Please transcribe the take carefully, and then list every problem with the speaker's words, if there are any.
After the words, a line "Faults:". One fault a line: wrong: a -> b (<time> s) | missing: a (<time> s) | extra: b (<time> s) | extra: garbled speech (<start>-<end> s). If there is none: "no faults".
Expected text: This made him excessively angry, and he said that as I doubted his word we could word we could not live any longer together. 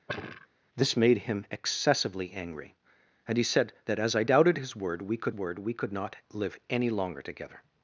This made him excessively angry, and he said that as I doubted his word we could word we could not live any longer together.
Faults:
no faults